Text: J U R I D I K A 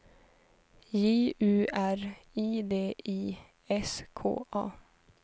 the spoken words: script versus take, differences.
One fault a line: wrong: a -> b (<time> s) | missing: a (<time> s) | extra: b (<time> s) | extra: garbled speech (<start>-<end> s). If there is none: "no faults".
extra: S (3.7 s)